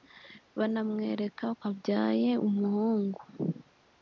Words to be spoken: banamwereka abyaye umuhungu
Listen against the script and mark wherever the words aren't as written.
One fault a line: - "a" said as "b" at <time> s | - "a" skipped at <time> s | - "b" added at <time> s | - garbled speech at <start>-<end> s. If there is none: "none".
none